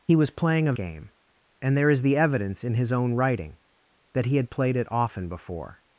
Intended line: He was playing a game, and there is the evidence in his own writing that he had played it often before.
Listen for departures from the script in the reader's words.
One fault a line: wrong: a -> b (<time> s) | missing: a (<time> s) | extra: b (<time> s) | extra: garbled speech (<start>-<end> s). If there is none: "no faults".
no faults